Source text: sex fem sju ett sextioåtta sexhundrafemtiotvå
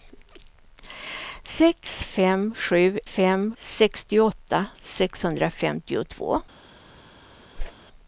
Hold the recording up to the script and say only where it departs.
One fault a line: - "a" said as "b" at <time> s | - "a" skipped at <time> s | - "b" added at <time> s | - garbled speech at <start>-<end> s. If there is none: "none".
- "ett" said as "fem" at 3.0 s